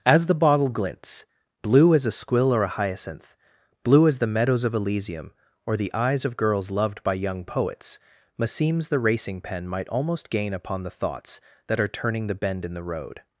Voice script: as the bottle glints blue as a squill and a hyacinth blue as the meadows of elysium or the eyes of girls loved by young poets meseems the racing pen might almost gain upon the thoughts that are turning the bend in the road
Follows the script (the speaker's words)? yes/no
no